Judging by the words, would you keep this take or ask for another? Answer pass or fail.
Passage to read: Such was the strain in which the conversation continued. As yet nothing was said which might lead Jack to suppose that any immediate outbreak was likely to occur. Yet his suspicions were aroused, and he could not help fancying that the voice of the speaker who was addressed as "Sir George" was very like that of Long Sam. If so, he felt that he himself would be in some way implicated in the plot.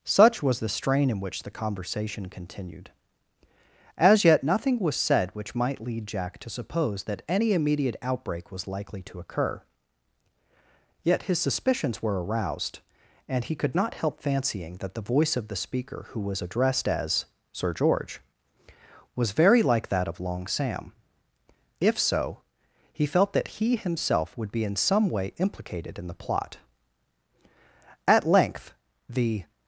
fail